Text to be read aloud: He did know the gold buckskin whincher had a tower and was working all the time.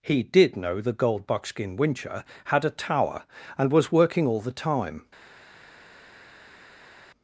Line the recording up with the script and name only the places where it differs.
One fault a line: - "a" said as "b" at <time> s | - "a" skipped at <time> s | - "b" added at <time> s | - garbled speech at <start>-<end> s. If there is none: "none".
none